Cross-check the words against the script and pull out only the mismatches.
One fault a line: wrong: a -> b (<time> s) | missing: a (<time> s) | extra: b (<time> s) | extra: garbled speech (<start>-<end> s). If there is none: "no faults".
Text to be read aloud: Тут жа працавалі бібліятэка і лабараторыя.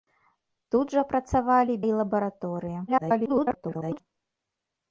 missing: бібліятэка (1.7 s)
extra: garbled speech (2.9-4.0 s)